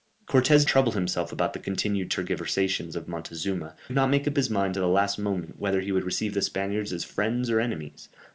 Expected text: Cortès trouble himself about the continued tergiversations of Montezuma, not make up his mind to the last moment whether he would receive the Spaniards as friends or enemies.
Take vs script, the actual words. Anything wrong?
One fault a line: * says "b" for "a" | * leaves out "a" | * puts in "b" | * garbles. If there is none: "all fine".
all fine